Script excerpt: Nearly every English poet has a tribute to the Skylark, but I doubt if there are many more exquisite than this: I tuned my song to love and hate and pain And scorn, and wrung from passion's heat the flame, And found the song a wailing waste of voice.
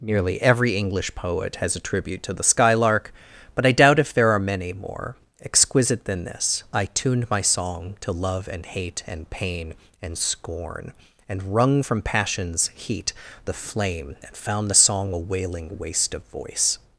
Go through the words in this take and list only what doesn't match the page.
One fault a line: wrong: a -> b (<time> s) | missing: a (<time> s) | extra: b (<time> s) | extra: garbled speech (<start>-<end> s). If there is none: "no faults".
no faults